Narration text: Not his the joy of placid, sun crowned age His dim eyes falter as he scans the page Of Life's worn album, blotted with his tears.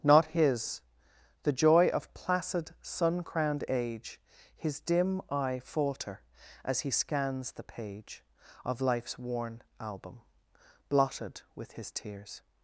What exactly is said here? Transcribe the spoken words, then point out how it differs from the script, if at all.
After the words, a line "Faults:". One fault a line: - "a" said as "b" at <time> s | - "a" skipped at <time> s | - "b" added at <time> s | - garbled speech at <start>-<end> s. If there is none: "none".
Not his the joy of placid, sun crowned age His dim eye falter as he scans the page Of Life's worn album, blotted with his tears.
Faults:
- "eyes" said as "eye" at 5.3 s